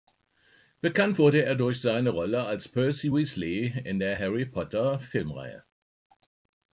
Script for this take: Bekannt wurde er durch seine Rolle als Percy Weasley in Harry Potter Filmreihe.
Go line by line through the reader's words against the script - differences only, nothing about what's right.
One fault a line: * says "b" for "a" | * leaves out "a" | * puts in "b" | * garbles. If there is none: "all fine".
* puts in "der"